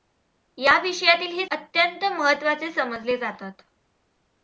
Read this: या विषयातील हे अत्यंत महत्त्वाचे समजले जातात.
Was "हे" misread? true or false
false